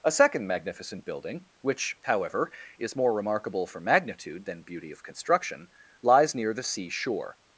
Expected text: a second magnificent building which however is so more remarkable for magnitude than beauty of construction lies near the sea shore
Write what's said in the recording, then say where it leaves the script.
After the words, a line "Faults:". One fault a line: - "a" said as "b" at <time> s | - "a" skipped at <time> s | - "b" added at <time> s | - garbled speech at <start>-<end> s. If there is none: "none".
a second magnificent building which however is more remarkable for magnitude than beauty of construction lies near the sea shore
Faults:
- "so" skipped at 3.0 s